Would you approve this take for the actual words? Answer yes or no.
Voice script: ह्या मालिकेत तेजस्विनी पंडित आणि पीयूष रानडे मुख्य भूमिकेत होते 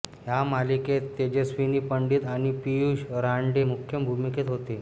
yes